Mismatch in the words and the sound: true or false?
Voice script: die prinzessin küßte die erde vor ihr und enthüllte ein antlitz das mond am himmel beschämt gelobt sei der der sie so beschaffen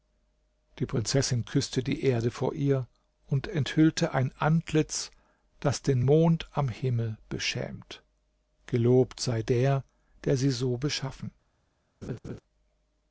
true